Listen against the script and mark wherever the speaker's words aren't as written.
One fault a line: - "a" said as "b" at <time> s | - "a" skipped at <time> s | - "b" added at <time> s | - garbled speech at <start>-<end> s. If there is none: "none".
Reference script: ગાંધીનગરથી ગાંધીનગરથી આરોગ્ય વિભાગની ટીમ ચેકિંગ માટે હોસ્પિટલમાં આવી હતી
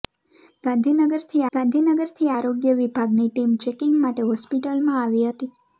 none